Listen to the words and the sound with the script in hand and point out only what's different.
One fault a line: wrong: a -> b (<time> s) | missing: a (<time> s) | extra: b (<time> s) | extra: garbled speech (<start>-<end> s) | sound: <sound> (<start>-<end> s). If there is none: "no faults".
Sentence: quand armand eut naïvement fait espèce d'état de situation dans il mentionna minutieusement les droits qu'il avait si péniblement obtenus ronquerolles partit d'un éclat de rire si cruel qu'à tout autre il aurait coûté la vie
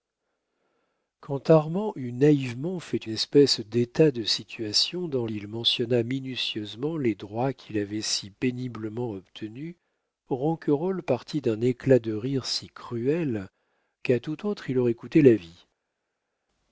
no faults